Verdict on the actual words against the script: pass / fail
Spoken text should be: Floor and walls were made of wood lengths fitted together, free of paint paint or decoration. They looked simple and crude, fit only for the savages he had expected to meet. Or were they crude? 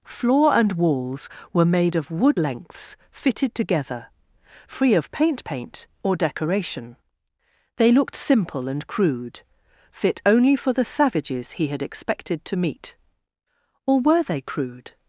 pass